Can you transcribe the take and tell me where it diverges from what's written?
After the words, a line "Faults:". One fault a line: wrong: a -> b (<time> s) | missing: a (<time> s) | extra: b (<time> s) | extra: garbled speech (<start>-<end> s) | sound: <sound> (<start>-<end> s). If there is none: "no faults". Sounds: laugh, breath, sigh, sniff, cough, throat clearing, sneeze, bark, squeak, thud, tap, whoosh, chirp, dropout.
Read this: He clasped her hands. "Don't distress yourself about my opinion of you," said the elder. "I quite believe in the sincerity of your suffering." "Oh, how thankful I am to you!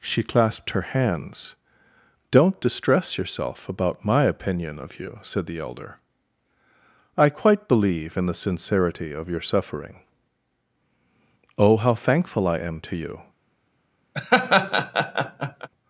She clasped her hands. "Don't distress yourself about my opinion of you," said the elder. "I quite believe in the sincerity of your suffering." "Oh, how thankful I am to you!
Faults:
wrong: He -> She (0.0 s)
sound: laugh (14.1-15.7 s)